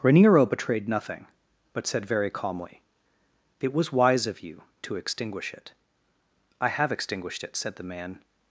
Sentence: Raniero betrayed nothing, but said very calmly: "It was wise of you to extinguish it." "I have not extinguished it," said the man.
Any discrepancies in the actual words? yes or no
yes